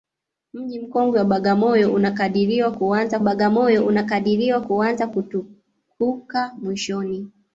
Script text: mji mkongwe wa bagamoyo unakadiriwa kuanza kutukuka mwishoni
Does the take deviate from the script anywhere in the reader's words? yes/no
yes